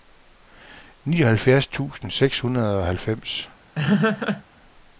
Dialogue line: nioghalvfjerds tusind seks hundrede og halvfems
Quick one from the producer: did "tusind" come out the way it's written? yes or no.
yes